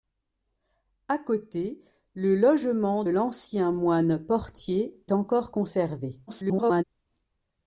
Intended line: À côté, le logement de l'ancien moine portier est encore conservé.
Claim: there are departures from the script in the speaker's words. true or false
true